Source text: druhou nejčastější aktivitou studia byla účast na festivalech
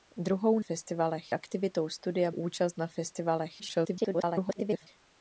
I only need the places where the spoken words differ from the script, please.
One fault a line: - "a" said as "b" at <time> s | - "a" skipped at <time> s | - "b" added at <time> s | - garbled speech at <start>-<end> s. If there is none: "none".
- "nejčastější" said as "festivalech" at 0.6 s
- "byla" skipped at 2.3 s
- garbled speech at 3.6-4.9 s